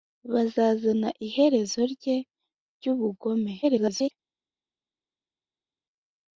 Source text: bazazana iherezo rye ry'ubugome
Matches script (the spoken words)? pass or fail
fail